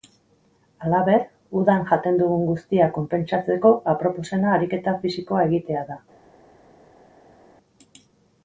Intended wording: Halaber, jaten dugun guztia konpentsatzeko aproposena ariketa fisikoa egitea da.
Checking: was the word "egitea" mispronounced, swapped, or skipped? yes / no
no